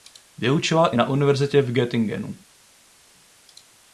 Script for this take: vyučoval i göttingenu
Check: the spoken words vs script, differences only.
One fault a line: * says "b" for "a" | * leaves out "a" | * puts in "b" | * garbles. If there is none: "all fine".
* puts in "na univerzitě v"